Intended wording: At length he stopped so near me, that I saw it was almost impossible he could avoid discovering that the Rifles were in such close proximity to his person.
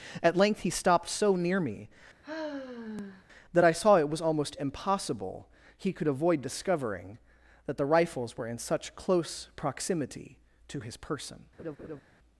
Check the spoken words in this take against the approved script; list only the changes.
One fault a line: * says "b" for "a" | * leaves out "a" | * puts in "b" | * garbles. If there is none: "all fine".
all fine